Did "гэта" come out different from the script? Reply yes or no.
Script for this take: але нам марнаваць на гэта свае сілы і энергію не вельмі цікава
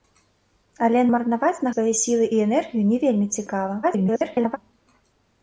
yes